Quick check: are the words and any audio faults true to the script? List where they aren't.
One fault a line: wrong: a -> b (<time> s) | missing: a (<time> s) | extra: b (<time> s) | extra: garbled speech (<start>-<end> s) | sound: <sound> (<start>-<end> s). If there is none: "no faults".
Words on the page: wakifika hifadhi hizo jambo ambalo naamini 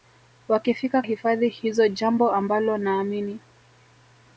no faults